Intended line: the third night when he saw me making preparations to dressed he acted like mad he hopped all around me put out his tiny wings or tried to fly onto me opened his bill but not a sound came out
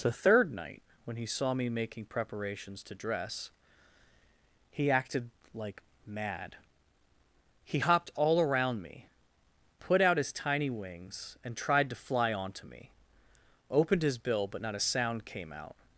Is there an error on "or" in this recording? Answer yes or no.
yes